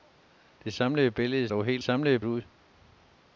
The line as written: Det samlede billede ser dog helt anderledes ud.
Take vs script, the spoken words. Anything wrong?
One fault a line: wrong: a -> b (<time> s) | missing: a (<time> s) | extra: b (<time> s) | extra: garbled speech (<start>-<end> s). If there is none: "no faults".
missing: ser (1.5 s)
wrong: anderledes -> samlede (1.8 s)